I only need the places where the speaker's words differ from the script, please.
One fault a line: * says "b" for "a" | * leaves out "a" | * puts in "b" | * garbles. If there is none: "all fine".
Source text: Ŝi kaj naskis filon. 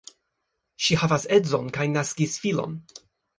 * puts in "havas edzon"